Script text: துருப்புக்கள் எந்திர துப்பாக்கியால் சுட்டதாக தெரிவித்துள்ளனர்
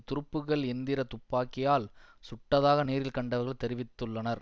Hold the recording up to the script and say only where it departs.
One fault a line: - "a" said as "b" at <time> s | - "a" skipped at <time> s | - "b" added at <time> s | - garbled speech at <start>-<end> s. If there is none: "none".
- "நேரில் கண்டவர்கள்" added at 2.8 s